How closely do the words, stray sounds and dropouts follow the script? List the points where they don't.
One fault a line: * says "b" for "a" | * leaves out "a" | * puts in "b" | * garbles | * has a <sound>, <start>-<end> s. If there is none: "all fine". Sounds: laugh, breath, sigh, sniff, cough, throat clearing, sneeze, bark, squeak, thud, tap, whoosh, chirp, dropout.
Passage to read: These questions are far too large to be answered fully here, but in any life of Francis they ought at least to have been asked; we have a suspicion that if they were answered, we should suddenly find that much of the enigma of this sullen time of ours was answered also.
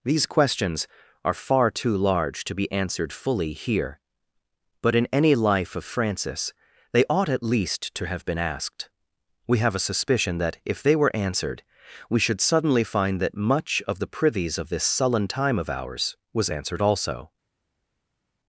* says "privies" for "enigma"